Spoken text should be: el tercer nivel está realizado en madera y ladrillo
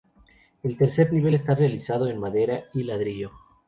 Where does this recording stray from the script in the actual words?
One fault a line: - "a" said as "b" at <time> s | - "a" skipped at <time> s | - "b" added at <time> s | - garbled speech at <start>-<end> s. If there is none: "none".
none